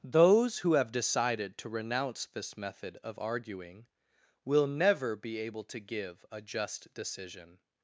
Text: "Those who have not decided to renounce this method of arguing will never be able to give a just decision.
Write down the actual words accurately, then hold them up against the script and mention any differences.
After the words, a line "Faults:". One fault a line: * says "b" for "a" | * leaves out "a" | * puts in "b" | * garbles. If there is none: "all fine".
"Those who have decided to renounce this method of arguing will never be able to give a just decision.
Faults:
* leaves out "not"